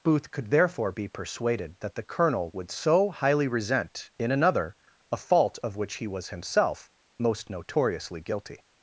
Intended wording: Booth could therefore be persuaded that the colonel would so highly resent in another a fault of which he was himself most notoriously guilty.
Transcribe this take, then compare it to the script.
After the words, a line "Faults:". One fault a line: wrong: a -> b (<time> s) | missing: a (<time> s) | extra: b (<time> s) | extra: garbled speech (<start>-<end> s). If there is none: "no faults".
Booth could therefore be persuaded that the colonel would so highly resent in another a fault of which he was himself most notoriously guilty.
Faults:
no faults